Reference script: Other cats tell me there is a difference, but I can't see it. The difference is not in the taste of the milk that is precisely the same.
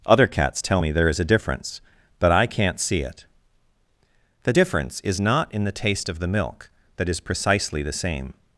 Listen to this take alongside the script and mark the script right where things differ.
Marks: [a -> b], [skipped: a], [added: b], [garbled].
Other cats tell me there is a difference, but I can't see it. The difference is not in the taste of the milk that is precisely the same.